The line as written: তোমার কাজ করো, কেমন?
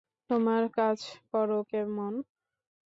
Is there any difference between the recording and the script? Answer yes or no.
no